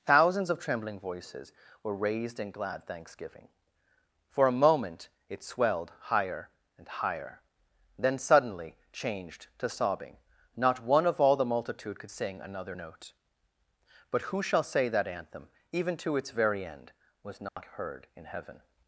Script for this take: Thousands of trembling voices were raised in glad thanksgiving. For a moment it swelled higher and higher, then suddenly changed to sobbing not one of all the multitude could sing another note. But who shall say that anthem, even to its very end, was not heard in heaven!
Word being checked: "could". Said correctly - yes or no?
yes